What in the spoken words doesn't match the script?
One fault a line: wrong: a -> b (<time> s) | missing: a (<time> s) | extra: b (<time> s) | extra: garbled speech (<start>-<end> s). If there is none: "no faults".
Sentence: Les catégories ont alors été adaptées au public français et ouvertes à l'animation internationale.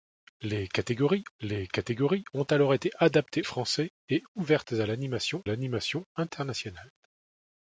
extra: les catégories (1.4 s)
missing: au public (3.4 s)
extra: l'animation (5.4 s)